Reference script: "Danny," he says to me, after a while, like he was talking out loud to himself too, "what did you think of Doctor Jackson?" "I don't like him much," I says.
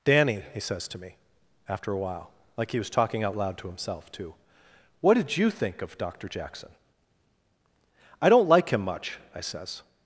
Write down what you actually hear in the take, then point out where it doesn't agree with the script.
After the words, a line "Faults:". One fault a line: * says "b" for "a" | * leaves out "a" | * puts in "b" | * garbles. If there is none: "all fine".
"Danny," he says to me, after a while, like he was talking out loud to himself too, "what did you think of Doctor Jackson?" "I don't like him much," I says.
Faults:
all fine